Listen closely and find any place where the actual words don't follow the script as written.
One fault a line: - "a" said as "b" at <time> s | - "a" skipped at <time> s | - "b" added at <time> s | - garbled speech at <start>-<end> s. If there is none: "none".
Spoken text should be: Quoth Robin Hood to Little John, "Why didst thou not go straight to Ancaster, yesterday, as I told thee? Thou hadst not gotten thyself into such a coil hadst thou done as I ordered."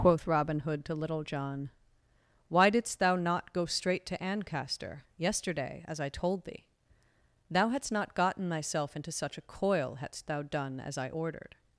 none